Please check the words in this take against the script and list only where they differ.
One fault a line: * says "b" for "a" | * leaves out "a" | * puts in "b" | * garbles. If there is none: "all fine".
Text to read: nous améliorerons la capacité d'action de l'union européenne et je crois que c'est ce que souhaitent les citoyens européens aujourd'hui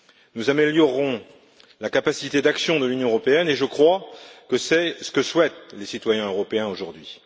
all fine